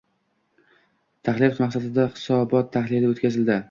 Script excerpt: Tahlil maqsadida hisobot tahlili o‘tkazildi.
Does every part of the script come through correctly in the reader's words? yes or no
yes